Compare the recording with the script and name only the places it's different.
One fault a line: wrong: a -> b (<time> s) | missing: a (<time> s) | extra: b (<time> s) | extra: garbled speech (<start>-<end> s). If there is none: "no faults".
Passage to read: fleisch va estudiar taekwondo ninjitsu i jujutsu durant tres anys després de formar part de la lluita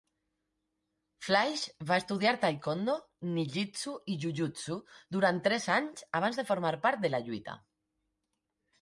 wrong: després -> abans (6.2 s)